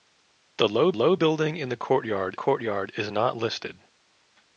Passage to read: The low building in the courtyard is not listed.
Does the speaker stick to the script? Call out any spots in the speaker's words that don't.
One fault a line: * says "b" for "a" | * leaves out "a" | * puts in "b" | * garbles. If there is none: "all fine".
* puts in "low"
* puts in "courtyard"